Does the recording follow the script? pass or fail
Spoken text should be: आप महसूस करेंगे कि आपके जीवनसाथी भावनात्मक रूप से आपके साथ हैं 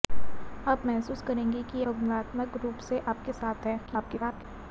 fail